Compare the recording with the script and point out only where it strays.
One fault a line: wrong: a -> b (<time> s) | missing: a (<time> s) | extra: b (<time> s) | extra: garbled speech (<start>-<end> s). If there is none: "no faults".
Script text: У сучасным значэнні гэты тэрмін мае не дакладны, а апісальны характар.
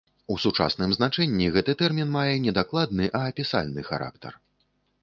no faults